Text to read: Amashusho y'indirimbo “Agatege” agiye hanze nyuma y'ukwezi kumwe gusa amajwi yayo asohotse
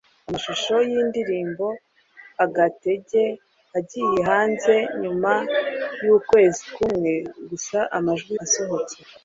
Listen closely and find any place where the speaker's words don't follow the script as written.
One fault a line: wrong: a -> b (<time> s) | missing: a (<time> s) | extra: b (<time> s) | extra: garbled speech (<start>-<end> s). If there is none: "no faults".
missing: yayo (8.3 s)